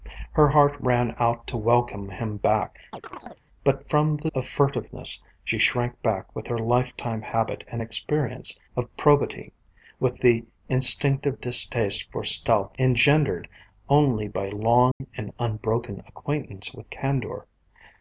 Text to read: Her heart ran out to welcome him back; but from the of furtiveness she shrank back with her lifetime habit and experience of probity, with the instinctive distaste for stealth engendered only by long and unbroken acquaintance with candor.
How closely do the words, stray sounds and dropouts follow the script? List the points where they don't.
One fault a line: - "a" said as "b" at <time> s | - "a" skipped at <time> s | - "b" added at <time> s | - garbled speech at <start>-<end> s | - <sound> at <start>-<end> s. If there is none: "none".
- chirp at 2.9-3.4 s
- dropout at 14.9-15.0 s